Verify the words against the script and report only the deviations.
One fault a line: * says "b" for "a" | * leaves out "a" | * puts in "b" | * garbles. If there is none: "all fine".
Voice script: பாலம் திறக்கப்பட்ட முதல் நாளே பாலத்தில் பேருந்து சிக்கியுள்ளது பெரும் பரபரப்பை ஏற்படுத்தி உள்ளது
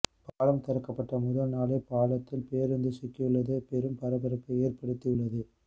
all fine